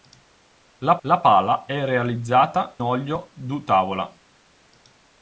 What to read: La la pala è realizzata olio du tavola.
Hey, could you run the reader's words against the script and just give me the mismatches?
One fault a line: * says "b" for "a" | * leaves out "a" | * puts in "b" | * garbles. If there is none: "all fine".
all fine